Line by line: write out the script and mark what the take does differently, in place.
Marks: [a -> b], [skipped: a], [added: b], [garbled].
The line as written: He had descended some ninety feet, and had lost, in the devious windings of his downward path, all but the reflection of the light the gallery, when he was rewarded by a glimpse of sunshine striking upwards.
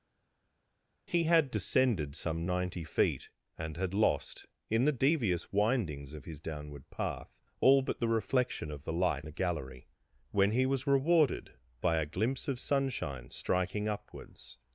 He had descended some ninety feet, and had lost, in the devious windings of his downward path, all but the reflection of the light the gallery, when he was rewarded by a glimpse of sunshine striking upwards.